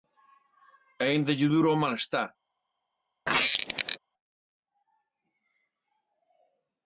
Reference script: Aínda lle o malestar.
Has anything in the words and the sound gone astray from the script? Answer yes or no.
yes